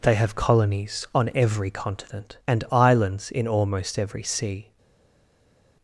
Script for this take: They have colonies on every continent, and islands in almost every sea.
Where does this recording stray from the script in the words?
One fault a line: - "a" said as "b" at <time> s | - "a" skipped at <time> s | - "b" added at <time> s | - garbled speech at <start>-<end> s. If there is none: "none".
none